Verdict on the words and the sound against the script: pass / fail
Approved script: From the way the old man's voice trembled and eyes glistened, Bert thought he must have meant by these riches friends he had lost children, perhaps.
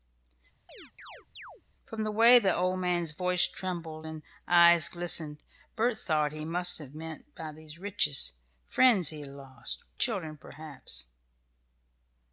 fail